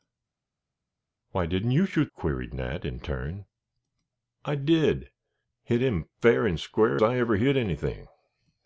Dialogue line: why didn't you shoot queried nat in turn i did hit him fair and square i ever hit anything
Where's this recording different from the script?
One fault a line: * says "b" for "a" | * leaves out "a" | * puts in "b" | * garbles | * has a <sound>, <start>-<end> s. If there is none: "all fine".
all fine